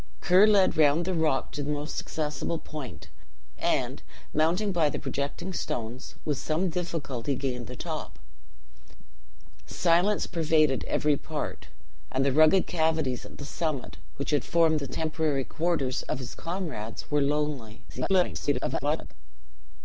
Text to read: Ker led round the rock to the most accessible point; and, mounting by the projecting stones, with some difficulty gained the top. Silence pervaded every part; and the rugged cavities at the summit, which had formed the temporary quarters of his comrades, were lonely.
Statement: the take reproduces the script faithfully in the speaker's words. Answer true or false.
false